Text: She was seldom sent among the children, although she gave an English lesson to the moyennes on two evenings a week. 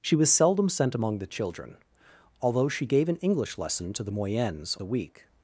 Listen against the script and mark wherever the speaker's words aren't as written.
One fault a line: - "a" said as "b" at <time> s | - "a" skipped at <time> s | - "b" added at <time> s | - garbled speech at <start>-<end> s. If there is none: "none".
- "on two evenings" skipped at 4.8 s